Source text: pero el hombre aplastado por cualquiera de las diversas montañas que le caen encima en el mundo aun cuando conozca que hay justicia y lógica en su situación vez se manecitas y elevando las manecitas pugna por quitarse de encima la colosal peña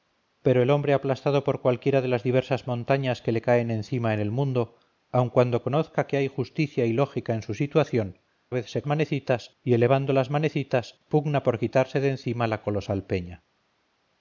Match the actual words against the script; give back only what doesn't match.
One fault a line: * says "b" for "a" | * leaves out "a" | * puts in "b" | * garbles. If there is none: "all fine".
all fine